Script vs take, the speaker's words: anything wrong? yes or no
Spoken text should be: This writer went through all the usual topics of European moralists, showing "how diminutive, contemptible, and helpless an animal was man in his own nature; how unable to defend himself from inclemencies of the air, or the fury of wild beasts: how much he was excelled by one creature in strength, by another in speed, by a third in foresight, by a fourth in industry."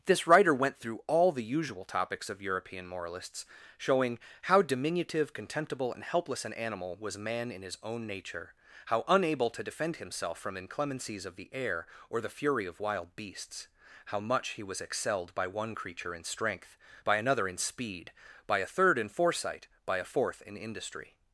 no